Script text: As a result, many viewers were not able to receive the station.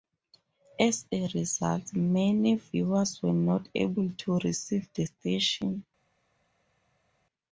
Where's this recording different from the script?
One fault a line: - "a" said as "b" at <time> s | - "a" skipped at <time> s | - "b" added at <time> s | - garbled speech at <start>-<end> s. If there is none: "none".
none